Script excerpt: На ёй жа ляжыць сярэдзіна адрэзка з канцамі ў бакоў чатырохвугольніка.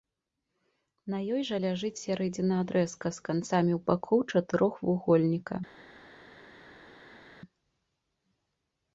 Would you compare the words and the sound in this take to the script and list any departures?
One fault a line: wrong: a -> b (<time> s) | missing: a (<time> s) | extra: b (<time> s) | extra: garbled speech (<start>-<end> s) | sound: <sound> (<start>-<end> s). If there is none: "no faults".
no faults